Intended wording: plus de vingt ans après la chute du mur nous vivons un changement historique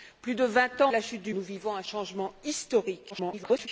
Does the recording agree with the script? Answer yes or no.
no